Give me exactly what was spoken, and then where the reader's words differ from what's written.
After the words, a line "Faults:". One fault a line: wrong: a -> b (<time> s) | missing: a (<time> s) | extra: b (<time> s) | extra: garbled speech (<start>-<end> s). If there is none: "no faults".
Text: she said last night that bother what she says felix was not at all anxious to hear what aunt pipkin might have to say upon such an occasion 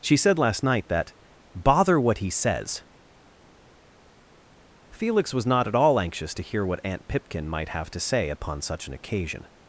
she said last night that bother what he says felix was not at all anxious to hear what aunt pipkin might have to say upon such an occasion
Faults:
wrong: she -> he (2.2 s)